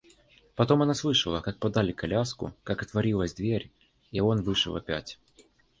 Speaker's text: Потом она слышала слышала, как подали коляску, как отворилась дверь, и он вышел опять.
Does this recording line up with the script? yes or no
no